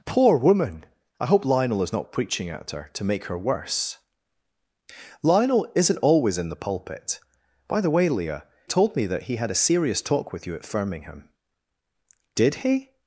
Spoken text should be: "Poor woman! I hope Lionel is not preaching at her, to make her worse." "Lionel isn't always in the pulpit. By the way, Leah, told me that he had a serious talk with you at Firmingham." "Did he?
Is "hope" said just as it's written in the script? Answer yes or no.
yes